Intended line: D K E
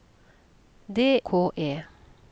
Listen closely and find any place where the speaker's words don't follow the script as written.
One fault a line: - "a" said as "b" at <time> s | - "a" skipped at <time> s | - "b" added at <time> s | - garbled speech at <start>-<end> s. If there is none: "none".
none